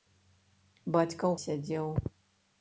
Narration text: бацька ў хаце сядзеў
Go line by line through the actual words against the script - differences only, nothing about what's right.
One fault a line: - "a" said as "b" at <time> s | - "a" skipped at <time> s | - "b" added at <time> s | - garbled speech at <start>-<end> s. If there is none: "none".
- "хаце" skipped at 1.4 s